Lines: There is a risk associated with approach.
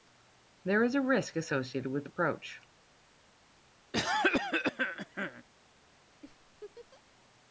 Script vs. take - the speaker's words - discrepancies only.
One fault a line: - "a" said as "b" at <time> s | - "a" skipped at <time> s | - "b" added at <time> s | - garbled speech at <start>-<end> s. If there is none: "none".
none